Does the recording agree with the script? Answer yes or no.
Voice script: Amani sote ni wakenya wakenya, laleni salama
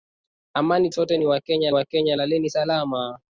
yes